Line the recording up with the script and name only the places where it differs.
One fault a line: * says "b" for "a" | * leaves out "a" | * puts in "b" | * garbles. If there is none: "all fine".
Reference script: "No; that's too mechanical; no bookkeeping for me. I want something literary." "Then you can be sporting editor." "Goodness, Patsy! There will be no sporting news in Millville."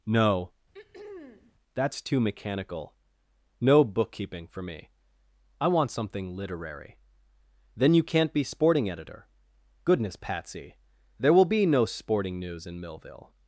* says "can't" for "can"